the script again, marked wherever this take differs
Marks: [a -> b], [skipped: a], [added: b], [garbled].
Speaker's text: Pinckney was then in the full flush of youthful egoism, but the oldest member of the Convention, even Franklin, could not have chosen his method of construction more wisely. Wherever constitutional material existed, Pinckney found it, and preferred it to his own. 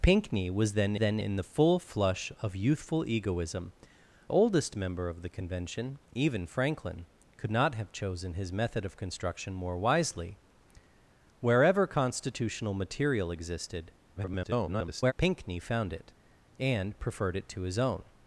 Pinckney was then [added: then] in the full flush of youthful egoism, [skipped: but the] oldest member of the Convention, even Franklin, could not have chosen his method of construction more wisely. Wherever constitutional material existed, [garbled] Pinckney found it, and preferred it to his own.